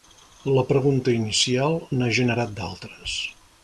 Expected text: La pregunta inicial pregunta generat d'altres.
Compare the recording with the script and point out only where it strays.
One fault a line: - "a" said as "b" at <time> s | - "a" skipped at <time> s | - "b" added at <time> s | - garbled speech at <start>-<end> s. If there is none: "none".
- "pregunta" said as "n'ha" at 2.0 s